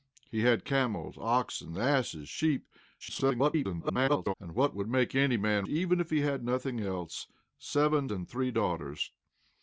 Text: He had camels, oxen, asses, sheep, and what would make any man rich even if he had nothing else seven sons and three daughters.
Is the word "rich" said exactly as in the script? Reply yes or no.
no